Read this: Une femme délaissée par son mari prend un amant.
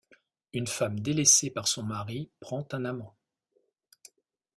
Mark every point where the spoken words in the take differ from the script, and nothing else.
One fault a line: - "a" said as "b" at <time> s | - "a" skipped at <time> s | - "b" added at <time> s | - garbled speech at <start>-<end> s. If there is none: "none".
none